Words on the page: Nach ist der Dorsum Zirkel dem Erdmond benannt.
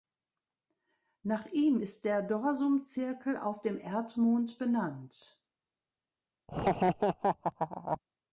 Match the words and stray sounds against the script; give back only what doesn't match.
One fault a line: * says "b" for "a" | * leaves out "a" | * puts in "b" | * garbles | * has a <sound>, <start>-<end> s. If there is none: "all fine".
* puts in "ihm"
* puts in "auf"
* has a laugh, 6.5-8.0 s